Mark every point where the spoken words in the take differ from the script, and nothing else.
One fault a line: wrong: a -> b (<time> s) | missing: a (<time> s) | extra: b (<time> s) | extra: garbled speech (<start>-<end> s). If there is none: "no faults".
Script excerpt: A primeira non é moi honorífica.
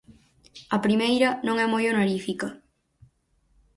no faults